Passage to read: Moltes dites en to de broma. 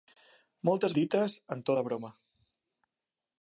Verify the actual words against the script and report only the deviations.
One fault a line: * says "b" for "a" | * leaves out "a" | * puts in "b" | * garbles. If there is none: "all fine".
all fine